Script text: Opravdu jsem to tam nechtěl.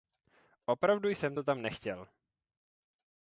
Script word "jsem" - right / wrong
right